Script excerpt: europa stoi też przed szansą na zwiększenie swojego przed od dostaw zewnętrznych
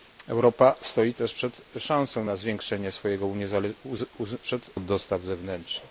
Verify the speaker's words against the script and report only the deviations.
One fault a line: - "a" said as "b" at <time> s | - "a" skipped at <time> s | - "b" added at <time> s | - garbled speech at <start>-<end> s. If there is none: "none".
none